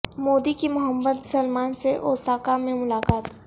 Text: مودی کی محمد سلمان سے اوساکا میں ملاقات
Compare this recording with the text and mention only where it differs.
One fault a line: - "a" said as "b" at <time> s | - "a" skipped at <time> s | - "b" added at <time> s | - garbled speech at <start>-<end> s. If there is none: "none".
none